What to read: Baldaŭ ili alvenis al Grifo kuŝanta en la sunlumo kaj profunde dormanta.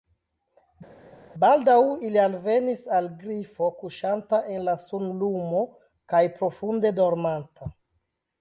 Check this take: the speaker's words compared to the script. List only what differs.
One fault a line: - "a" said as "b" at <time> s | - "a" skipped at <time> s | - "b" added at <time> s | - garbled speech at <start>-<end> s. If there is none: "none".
none